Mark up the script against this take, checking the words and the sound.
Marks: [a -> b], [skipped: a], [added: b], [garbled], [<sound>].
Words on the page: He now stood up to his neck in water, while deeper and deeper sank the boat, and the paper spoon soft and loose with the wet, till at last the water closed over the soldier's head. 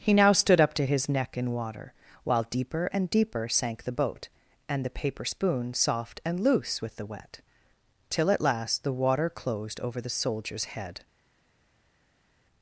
He now stood up to his neck in water, while deeper and deeper sank the boat, and the paper spoon soft and loose with the wet, till at last the water closed over the soldier's head.